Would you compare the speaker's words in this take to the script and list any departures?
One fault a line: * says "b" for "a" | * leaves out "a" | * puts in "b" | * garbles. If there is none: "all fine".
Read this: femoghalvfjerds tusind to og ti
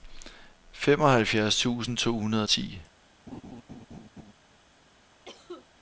* puts in "hundrede"